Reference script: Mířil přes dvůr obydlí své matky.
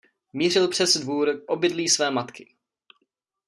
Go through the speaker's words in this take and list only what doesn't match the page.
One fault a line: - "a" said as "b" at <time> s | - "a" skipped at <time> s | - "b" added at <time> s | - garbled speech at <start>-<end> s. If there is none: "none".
none